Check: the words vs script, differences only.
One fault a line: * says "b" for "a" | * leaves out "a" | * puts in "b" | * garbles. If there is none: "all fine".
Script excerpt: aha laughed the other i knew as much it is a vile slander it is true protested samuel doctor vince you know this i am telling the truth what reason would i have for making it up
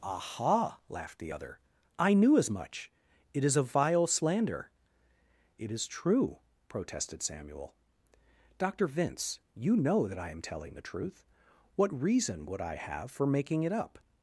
* says "that" for "this"